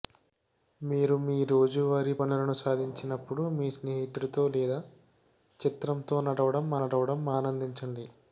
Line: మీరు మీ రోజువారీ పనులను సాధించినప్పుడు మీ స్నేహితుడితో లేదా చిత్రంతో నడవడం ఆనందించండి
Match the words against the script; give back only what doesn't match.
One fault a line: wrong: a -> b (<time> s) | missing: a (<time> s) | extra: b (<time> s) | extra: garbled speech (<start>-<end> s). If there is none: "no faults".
extra: నడవడం (6.8 s)